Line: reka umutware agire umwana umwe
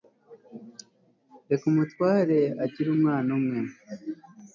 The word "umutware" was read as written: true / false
true